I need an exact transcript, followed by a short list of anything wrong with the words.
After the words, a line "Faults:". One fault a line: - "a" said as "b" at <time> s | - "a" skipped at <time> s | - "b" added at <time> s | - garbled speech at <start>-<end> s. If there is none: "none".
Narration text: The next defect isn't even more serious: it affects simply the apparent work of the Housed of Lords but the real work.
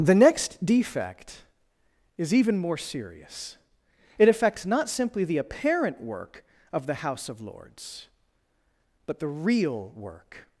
The next defect is even more serious: it affects not simply the apparent work of the House of Lords but the real work.
Faults:
- "isn't" said as "is" at 2.2 s
- "not" added at 4.7 s
- "Housed" said as "House" at 7.0 s